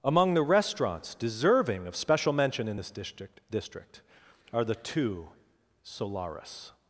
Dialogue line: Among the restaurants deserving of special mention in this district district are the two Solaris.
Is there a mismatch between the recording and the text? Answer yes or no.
no